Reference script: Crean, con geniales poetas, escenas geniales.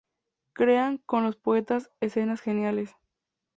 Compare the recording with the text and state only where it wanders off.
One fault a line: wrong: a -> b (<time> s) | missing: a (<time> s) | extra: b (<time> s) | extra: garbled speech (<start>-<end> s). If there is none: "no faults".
wrong: geniales -> los (1.2 s)